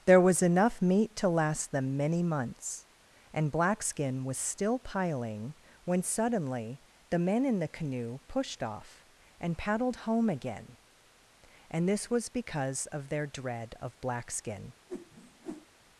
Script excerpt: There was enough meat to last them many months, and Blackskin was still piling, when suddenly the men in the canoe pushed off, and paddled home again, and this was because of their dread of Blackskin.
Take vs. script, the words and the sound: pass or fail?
fail